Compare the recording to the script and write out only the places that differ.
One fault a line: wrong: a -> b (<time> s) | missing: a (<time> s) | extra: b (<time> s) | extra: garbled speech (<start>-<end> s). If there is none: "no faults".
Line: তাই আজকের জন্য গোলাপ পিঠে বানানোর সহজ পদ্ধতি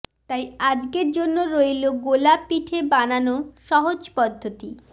extra: রইল (1.5 s)